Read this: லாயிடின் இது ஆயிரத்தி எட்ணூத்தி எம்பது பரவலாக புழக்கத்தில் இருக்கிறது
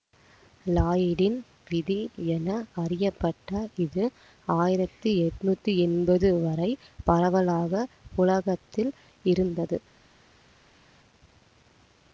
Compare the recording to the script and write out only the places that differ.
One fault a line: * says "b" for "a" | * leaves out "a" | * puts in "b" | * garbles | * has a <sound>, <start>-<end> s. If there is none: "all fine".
* puts in "விதி என அறியப்பட்ட"
* puts in "வரை"
* says "இருந்தது" for "இருக்கிறது"